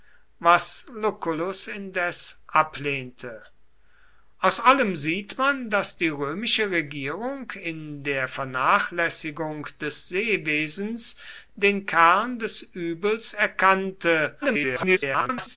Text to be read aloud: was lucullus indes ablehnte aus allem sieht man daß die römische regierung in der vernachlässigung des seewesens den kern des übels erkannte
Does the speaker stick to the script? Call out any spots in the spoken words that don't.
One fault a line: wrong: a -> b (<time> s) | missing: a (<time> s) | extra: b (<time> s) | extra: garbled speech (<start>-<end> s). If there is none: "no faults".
extra: garbled speech (14.4-15.6 s)